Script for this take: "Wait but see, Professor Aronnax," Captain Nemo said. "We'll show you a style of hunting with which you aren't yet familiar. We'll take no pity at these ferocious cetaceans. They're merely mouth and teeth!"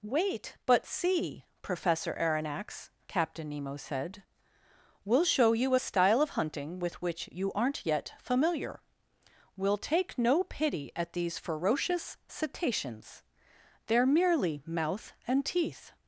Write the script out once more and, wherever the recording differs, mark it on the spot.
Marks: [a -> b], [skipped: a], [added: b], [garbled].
"Wait but see, Professor Aronnax," Captain Nemo said. "We'll show you a style of hunting with which you aren't yet familiar. We'll take no pity at these ferocious cetaceans. They're merely mouth and teeth!"